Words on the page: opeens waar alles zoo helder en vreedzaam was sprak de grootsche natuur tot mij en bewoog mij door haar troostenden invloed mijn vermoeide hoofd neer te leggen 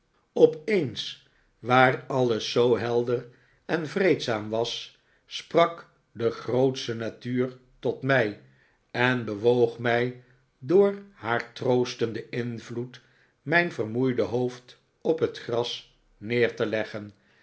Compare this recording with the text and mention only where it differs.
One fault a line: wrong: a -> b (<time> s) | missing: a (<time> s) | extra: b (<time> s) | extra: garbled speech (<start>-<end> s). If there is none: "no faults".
extra: op het gras (15.0 s)